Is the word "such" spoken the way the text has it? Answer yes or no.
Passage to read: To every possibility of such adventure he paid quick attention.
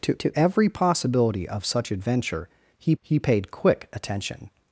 yes